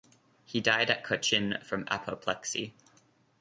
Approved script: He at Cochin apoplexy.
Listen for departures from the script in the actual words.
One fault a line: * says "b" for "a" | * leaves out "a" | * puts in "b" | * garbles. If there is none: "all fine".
* puts in "died"
* puts in "from"